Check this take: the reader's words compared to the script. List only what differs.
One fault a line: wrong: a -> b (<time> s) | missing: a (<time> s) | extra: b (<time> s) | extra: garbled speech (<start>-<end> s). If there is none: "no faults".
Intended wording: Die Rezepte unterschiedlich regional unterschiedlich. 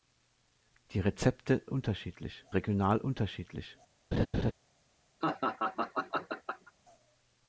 no faults